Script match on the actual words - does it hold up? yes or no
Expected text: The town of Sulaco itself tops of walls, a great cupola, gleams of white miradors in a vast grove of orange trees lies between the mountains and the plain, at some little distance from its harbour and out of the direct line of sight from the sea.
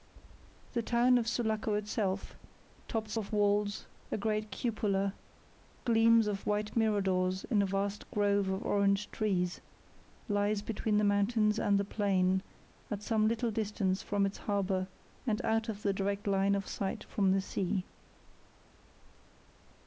yes